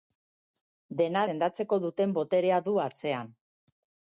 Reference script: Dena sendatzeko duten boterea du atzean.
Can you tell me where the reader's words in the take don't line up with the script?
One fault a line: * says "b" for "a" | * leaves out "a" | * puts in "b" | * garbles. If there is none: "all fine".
all fine